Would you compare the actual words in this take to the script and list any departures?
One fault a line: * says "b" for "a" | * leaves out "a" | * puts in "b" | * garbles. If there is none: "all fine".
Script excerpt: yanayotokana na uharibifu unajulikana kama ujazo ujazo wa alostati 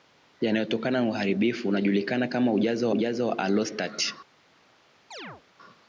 all fine